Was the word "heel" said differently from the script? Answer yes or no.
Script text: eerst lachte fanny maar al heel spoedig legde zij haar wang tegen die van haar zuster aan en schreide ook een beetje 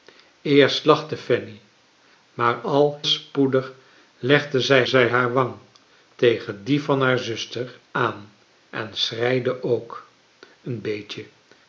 yes